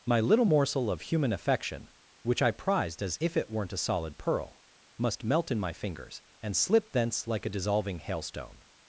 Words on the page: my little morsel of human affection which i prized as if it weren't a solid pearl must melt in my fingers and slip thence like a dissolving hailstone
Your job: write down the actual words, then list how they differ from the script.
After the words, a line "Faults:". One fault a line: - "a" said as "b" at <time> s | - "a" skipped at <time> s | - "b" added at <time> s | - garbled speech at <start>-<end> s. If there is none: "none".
my little morsel of human affection which i prized as if it weren't a solid pearl must melt in my fingers and slip thence like a dissolving hailstone
Faults:
none